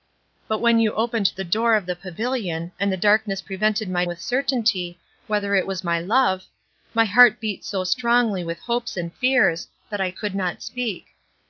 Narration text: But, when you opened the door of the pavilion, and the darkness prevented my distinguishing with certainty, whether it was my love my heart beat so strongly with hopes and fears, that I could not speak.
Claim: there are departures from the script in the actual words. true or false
true